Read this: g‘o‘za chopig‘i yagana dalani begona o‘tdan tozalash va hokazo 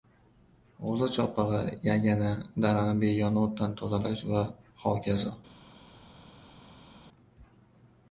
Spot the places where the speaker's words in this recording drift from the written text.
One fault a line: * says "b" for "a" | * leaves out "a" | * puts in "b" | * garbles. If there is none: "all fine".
all fine